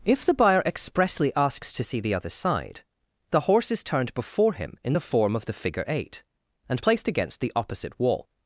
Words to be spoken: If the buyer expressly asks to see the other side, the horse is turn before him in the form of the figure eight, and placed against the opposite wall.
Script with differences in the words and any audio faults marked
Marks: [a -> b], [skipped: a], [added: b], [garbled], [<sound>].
If the buyer expressly asks to see the other side, the horse is [turn -> turned] before him in the form of the figure eight, and placed against the opposite wall.